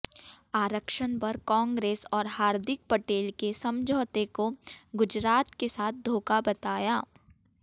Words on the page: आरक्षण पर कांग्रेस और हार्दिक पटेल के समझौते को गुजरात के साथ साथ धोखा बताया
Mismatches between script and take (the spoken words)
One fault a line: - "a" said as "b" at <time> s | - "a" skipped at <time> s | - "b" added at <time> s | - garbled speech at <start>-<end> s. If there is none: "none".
- "साथ" skipped at 6.0 s